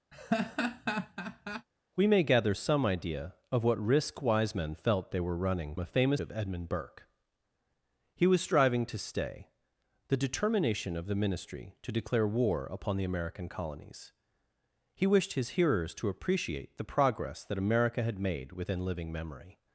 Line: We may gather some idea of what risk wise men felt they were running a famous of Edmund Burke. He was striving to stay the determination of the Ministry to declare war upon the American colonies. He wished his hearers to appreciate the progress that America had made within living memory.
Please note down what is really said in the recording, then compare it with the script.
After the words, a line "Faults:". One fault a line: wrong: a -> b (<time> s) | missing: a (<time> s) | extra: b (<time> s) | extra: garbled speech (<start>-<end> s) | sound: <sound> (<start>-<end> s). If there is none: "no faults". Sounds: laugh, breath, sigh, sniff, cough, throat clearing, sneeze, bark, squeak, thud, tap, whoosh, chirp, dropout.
We may gather some idea of what risk wise men felt they were running a famous of Edmund Burke. He was striving to stay the determination of the Ministry to declare war upon the American colonies. He wished his hearers to appreciate the progress that America had made within living memory.
Faults:
sound: laugh (0.1-1.7 s)